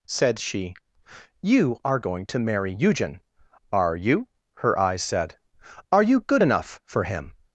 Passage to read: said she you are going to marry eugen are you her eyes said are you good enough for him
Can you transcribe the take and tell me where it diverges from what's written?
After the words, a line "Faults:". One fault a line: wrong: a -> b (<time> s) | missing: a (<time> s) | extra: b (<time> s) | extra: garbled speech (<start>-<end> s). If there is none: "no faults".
said she you are going to marry eugen are you her eyes said are you good enough for him
Faults:
no faults